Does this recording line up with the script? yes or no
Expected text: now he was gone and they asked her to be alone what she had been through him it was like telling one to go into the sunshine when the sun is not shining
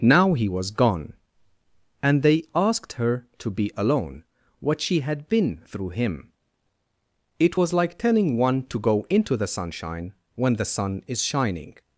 no